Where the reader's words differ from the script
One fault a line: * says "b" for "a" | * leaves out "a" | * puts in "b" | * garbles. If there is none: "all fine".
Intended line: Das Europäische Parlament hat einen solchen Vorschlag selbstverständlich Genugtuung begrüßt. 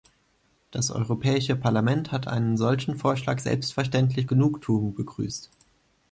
all fine